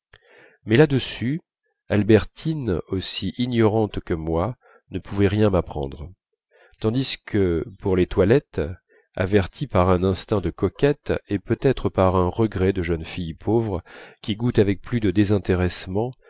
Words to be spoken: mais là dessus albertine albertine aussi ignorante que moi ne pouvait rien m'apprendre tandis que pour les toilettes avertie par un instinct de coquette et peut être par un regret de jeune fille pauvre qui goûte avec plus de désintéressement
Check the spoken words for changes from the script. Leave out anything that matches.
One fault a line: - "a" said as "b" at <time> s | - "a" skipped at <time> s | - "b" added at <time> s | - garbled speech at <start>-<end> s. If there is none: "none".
- "albertine" skipped at 2.8 s